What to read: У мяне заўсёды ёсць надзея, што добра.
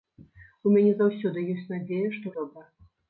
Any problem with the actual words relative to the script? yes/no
no